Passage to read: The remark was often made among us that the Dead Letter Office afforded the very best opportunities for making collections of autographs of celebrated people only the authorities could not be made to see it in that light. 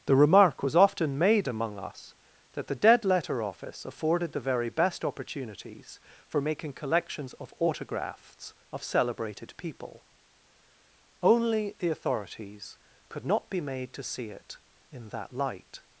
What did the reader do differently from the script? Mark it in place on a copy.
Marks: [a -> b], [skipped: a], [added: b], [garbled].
The remark was often made among us that the Dead Letter Office afforded the very best opportunities for making collections of autographs of celebrated people only the authorities could not be made to see it in that light.